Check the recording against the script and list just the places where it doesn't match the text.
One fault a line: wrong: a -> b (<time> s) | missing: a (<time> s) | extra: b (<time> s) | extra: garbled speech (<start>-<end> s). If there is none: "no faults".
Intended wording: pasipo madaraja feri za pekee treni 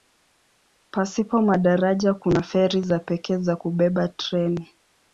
extra: kuna (2.1 s)
extra: za kubeba (3.4 s)